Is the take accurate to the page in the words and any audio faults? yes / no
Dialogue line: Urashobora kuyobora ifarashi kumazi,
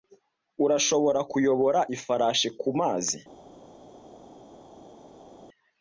yes